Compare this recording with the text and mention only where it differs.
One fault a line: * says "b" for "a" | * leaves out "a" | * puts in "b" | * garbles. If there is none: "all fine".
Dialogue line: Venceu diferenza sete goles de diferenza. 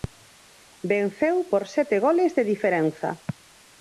* says "por" for "diferenza"